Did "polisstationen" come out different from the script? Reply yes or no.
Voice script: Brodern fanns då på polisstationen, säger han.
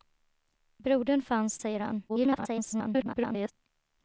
yes